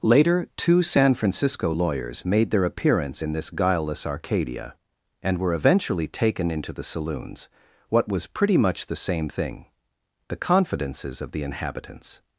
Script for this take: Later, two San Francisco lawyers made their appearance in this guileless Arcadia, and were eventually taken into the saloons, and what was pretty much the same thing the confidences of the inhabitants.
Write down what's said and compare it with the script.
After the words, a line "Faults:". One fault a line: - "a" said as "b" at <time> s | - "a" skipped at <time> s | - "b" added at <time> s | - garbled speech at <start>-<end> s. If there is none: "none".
Later, two San Francisco lawyers made their appearance in this guileless Arcadia, and were eventually taken into the saloons, what was pretty much the same thing the confidences of the inhabitants.
Faults:
- "and" skipped at 7.5 s